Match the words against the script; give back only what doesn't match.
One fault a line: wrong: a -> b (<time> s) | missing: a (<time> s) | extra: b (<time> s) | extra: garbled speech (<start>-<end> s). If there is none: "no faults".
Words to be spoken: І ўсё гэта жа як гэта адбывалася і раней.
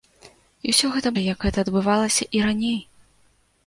no faults